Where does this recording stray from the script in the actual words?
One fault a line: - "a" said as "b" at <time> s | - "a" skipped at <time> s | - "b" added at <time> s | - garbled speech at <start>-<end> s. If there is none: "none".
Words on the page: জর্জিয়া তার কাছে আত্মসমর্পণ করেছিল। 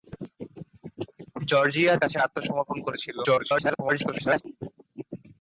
- "তার" skipped at 1.9 s
- garbled speech at 3.2-4.4 s